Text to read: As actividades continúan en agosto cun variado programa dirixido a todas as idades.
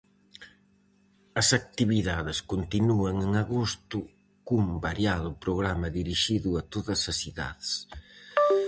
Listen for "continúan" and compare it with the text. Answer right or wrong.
right